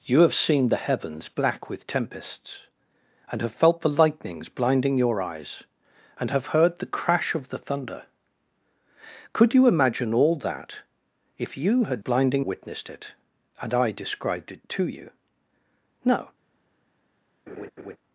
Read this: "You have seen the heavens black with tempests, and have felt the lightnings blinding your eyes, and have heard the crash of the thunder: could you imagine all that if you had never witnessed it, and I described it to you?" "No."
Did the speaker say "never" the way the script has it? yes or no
no